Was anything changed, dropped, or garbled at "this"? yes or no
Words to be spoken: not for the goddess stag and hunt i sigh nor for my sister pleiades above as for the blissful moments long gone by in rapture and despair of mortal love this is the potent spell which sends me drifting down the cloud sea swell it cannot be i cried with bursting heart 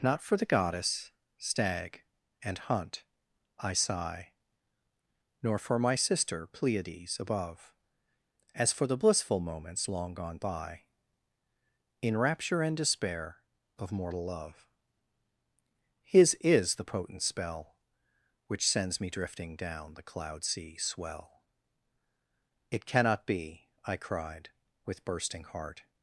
yes